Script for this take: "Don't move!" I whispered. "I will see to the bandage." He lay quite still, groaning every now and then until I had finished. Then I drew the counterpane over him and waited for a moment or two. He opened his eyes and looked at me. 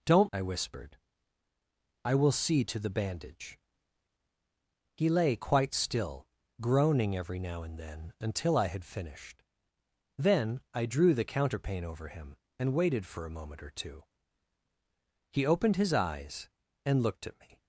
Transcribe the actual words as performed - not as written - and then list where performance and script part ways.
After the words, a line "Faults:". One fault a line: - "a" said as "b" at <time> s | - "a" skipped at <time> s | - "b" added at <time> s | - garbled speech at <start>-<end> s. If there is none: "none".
"Don't!" I whispered. "I will see to the bandage." He lay quite still, groaning every now and then until I had finished. Then I drew the counterpane over him and waited for a moment or two. He opened his eyes and looked at me.
Faults:
- "move" skipped at 0.3 s